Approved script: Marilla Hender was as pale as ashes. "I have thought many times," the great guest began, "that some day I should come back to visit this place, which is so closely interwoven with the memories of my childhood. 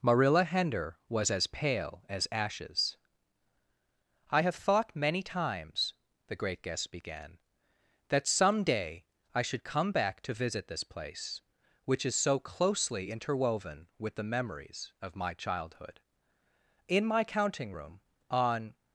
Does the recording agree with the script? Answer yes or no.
no